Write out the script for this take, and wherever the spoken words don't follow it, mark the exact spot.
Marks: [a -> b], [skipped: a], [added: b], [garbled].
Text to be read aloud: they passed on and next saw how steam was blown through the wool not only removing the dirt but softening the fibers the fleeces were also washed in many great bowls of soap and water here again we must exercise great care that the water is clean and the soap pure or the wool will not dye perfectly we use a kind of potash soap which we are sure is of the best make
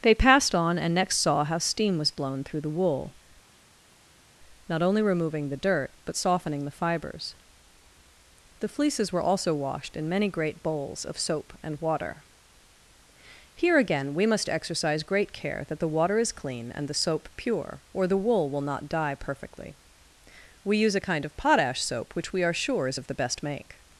they passed on and next saw how steam was blown through the wool not only removing the dirt but softening the fibers the fleeces were also washed in many great bowls of soap and water here again we must exercise great care that the water is clean and the soap pure or the wool will not dye perfectly we use a kind of potash soap which we are sure is of the best make